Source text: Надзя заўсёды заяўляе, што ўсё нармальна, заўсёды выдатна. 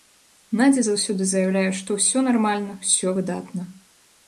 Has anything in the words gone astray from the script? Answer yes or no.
yes